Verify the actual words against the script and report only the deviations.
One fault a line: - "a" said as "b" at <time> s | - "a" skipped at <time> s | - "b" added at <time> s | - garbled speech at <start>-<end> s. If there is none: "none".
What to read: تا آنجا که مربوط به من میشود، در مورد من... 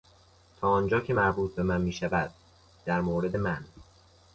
none